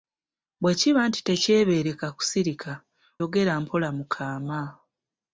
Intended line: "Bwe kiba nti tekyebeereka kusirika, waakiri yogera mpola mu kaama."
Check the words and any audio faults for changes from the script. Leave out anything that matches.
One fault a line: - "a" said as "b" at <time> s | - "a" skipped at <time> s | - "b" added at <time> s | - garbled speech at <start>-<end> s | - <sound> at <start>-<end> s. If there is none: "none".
- "waakiri" skipped at 2.7 s